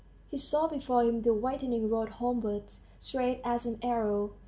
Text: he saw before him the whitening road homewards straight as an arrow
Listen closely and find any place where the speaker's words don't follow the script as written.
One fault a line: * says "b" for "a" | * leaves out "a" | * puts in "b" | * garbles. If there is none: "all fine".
all fine